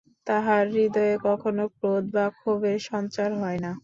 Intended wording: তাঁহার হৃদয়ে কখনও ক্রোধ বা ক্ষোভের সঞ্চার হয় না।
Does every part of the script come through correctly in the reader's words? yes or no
yes